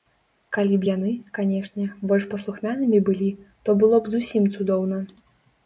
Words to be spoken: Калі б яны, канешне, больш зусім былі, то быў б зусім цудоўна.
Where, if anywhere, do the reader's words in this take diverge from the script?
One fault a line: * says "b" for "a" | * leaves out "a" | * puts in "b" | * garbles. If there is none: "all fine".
* says "паслухмянымі" for "зусім"
* says "было" for "быў"